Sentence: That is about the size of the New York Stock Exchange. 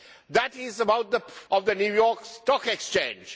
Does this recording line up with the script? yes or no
no